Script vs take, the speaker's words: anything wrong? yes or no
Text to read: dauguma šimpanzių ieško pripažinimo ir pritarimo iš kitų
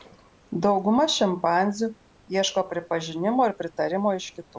no